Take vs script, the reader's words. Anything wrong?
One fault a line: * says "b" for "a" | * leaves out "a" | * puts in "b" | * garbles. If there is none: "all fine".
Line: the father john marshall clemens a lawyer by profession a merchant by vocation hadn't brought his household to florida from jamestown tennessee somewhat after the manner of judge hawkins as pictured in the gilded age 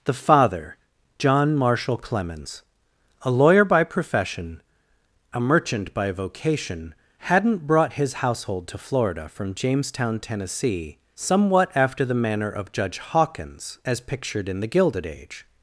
all fine